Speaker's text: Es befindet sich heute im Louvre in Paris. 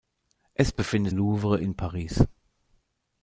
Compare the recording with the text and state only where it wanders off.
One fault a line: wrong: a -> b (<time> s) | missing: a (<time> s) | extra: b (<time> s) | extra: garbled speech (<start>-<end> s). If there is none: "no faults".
missing: sich heute im (1.1 s)